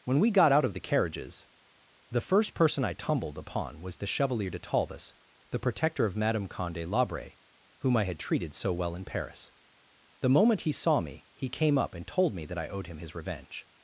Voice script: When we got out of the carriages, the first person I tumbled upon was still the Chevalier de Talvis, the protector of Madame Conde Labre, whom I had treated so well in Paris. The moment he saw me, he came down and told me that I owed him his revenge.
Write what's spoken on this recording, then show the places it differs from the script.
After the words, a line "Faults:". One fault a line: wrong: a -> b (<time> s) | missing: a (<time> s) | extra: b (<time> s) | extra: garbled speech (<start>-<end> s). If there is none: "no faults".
When we got out of the carriages, the first person I tumbled upon was the Chevalier de Talvis, the protector of Madame Conde Labre, whom I had treated so well in Paris. The moment he saw me, he came up and told me that I owed him his revenge.
Faults:
missing: still (4.0 s)
wrong: down -> up (11.8 s)